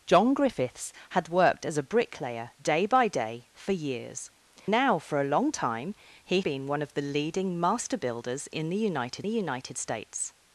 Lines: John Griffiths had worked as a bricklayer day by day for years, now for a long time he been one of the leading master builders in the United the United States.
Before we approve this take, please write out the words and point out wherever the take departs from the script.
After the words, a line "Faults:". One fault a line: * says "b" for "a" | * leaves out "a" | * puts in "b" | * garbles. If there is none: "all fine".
John Griffiths had worked as a bricklayer day by day for years, now for a long time he been one of the leading master builders in the United the United States.
Faults:
all fine